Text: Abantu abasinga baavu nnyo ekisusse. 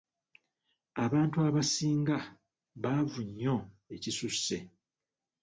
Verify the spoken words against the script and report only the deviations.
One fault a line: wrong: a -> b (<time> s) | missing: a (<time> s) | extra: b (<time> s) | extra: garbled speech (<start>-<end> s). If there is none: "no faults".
no faults